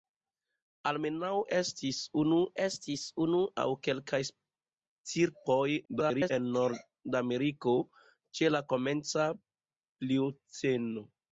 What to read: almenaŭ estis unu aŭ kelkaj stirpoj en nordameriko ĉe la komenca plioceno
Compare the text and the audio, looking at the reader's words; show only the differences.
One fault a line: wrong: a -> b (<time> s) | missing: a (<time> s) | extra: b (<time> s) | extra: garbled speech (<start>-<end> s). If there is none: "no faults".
extra: estis unu (2.6 s)
extra: garbled speech (5.8-6.3 s)